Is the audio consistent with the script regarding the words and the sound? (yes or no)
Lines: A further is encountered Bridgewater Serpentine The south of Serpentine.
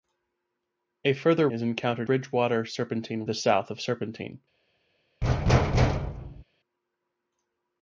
no